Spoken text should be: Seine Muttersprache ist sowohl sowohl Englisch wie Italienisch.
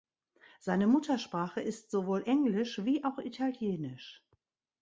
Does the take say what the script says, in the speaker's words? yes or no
no